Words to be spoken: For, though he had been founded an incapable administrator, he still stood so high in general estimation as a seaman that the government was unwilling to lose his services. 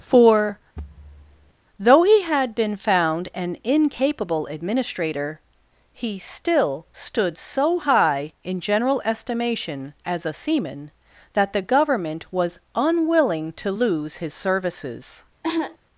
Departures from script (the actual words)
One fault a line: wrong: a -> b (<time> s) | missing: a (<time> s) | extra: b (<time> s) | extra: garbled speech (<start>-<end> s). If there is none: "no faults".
wrong: founded -> found (2.7 s)